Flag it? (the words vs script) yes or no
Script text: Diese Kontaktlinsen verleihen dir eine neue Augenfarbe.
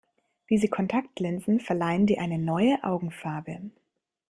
no